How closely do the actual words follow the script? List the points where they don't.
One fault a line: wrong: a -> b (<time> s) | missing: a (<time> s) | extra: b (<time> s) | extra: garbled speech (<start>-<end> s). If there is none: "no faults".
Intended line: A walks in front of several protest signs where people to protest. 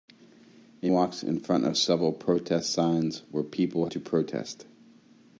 no faults